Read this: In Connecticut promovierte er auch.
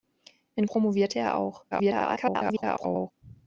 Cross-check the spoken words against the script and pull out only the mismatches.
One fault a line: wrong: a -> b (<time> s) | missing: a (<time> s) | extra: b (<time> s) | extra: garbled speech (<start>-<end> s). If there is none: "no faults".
missing: Connecticut (0.7 s)
extra: garbled speech (1.7-3.1 s)